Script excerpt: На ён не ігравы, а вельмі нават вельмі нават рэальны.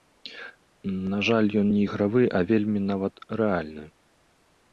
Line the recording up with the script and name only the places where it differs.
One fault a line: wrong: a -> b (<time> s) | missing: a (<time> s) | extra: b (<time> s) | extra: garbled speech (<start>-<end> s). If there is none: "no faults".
extra: жаль (1.3 s)
missing: вельмі нават (3.1 s)